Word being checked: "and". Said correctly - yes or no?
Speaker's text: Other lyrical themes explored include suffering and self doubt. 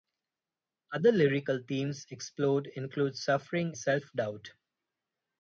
no